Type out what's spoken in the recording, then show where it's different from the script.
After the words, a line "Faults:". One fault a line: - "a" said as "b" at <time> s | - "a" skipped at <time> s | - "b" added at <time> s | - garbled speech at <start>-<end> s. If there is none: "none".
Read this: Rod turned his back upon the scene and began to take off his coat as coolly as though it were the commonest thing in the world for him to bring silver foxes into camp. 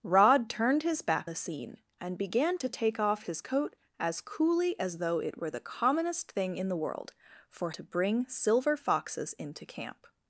Rod turned his back the scene and began to take off his coat as coolly as though it were the commonest thing in the world for to bring silver foxes into camp.
Faults:
- "upon" skipped at 1.3 s
- "him" skipped at 7.7 s